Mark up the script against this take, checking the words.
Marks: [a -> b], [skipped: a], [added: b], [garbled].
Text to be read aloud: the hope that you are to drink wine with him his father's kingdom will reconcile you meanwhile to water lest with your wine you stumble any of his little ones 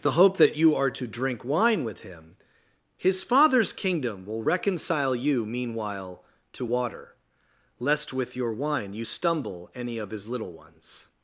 the hope that you are to drink wine with him his father's kingdom will reconcile you meanwhile to water lest with your wine you stumble any of his little ones